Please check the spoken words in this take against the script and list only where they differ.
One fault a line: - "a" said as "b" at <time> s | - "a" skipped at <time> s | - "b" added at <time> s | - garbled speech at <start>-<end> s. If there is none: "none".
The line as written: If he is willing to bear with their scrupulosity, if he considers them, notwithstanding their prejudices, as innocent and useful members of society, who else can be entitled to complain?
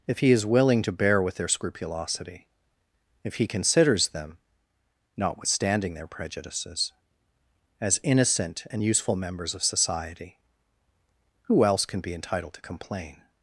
none